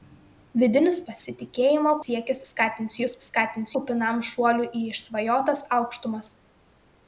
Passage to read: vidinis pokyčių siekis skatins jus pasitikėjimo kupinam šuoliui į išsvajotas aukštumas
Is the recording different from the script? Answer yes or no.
yes